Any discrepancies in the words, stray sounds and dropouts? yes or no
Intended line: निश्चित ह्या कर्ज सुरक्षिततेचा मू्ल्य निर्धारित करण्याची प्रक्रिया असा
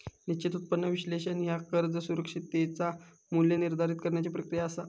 yes